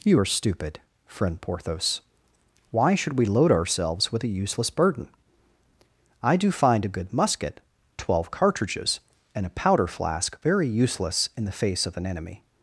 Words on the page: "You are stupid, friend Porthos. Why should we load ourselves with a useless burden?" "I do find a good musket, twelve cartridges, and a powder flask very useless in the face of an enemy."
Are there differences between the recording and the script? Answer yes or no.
no